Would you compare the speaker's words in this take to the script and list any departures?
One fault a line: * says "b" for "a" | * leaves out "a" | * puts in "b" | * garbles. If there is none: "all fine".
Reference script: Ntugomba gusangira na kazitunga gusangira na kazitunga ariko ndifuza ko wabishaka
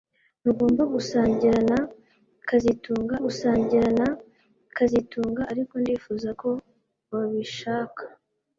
all fine